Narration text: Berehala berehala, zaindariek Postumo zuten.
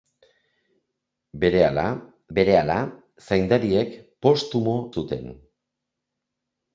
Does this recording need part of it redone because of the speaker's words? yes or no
no